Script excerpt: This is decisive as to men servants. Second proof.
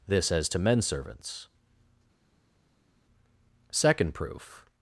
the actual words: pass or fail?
fail